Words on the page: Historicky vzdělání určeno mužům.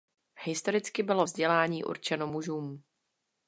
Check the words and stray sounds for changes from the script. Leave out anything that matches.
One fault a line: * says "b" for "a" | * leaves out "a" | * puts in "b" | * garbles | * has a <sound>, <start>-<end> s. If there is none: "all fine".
* puts in "bylo"